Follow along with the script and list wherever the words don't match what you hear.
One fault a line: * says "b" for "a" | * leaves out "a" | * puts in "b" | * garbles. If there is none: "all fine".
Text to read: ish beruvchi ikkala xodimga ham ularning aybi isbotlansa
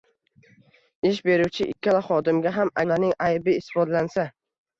all fine